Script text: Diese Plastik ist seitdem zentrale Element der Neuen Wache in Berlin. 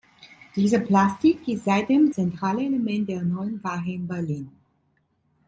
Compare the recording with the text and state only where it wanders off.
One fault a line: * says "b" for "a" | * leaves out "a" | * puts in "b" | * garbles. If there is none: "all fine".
all fine